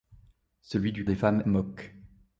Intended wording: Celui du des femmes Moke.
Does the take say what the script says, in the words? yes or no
yes